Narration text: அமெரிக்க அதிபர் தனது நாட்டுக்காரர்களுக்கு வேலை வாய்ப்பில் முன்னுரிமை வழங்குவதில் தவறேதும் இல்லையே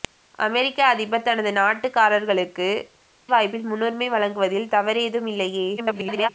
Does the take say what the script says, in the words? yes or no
no